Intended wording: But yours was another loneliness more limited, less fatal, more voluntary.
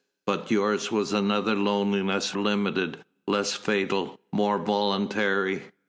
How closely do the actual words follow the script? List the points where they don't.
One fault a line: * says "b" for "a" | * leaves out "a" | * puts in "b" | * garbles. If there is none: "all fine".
* leaves out "more"